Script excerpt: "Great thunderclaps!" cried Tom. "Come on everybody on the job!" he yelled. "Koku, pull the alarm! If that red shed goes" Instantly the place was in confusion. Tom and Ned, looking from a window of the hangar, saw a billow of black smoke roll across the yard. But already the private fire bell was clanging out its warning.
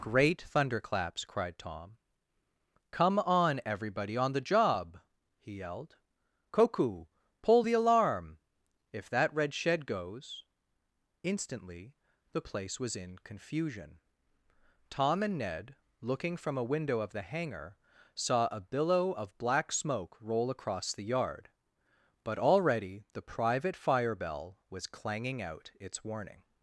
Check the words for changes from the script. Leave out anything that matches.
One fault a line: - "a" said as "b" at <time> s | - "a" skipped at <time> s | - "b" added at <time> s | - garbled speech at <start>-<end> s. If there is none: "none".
none